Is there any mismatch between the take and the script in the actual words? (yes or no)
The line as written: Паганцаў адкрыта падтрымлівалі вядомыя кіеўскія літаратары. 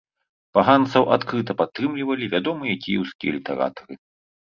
no